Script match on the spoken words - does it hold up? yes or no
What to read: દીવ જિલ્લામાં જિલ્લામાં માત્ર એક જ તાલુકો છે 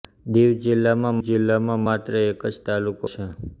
yes